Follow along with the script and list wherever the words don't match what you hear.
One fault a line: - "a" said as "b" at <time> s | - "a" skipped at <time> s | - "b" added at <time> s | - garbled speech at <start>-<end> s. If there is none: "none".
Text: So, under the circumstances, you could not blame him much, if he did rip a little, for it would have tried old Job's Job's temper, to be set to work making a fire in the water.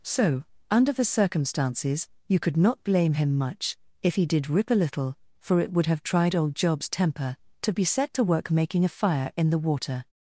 - "Job's" skipped at 6.9 s